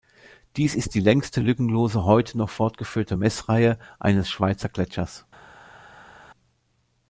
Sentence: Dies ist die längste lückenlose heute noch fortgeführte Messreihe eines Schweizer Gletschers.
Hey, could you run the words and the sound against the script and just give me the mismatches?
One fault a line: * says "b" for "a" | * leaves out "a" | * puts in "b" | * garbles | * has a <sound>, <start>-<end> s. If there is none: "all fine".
all fine